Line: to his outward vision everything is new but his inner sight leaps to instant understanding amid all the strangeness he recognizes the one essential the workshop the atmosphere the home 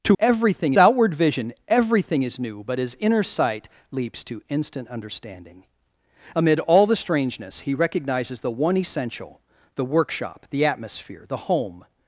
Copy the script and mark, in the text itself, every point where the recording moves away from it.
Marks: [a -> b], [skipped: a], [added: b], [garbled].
to [his -> everything] outward vision everything is new but his inner sight leaps to instant understanding amid all the strangeness he recognizes the one essential the workshop the atmosphere the home